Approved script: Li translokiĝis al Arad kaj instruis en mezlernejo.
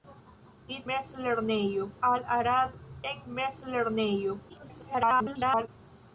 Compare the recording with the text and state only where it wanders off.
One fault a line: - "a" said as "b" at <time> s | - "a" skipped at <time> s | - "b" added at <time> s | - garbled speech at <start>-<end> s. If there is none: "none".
- "translokiĝis" said as "mezlernejo" at 0.9 s
- "kaj instruis" skipped at 2.8 s
- garbled speech at 4.5-5.7 s